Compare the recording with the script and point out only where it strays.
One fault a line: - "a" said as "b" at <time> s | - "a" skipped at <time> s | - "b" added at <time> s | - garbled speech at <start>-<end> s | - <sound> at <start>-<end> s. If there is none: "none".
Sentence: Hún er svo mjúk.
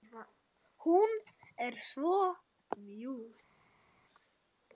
none